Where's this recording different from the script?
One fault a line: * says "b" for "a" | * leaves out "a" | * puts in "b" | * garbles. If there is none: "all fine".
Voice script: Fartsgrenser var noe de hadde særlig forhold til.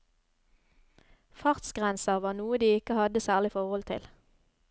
* puts in "ikke"